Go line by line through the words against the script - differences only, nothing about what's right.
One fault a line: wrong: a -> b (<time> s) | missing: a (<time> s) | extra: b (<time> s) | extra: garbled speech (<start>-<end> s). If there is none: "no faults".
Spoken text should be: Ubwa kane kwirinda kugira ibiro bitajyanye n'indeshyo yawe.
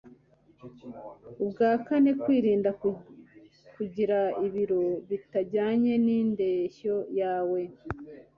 no faults